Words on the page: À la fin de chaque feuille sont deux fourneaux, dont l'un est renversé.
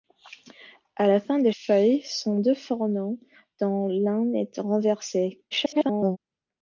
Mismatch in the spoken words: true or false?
true